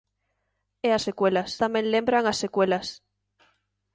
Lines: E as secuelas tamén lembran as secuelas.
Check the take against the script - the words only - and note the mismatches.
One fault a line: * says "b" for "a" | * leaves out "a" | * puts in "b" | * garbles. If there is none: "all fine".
all fine